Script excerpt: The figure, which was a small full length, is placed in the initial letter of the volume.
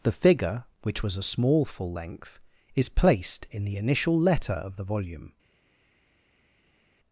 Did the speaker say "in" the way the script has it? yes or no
yes